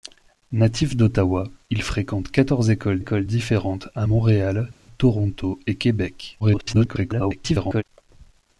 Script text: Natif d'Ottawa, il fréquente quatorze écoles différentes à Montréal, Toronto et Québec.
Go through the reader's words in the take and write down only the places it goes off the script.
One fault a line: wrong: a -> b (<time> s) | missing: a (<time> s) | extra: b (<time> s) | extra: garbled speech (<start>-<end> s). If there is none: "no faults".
extra: écoles (3.0 s)
extra: garbled speech (6.4-7.8 s)